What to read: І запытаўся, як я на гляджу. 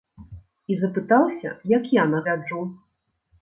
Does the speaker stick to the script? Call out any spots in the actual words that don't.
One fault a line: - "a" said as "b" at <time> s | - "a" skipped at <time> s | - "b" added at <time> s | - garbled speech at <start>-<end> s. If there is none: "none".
none